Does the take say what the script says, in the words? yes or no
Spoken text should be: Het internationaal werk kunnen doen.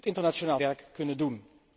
yes